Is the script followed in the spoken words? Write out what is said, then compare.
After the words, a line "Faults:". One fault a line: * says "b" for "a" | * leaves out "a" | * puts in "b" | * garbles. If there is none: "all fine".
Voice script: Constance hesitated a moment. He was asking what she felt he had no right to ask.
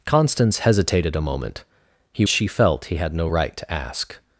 Constance hesitated a moment. He she felt he had no right to ask.
Faults:
* leaves out "was asking what"